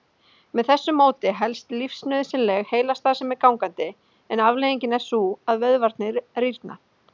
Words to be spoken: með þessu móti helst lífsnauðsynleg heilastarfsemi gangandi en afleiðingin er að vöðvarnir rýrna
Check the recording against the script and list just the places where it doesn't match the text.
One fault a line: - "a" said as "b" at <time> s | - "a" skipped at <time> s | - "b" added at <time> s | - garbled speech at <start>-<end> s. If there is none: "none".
- "sú" added at 5.1 s